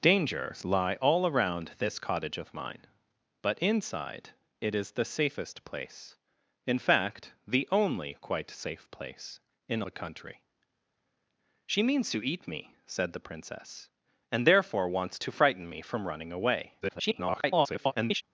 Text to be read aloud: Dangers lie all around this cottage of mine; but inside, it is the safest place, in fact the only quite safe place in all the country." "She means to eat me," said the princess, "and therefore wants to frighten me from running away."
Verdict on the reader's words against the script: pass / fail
fail